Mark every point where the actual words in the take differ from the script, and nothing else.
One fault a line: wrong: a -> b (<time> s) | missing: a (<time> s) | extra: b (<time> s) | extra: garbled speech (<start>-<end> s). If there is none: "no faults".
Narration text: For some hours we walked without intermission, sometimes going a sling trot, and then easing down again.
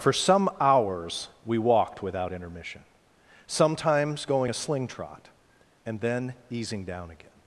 no faults